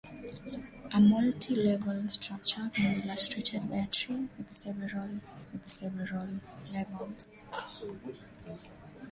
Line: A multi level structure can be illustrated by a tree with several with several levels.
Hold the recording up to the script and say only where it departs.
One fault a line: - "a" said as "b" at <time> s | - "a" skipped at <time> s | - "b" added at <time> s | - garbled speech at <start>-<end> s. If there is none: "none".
none